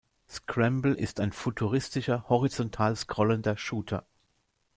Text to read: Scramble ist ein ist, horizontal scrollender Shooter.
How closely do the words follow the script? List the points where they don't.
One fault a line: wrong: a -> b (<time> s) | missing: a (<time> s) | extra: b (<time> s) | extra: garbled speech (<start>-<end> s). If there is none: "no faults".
wrong: ist -> futuristischer (1.3 s)